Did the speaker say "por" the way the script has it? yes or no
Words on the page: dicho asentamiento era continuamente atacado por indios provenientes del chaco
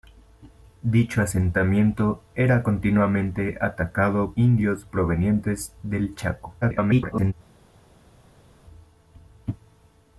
no